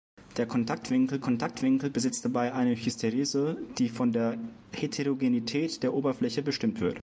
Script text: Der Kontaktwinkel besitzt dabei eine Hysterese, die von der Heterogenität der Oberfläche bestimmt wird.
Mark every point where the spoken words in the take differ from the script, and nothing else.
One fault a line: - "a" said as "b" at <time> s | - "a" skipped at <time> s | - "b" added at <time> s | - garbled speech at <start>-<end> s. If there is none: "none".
- "Kontaktwinkel" added at 1.2 s